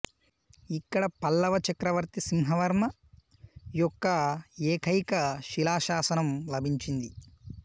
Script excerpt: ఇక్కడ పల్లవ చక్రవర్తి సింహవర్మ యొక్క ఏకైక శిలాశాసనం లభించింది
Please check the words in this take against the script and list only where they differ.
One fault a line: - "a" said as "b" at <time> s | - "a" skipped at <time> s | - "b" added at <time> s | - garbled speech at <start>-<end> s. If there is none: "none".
none